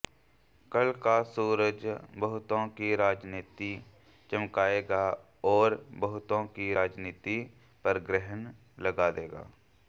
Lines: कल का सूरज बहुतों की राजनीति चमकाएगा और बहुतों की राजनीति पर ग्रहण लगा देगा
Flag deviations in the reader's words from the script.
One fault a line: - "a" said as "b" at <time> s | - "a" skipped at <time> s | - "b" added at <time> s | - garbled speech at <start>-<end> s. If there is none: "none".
none